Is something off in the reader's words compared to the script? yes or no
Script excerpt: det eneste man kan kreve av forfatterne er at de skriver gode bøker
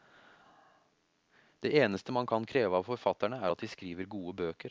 no